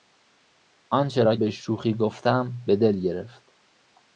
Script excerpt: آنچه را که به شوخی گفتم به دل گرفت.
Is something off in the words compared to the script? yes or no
yes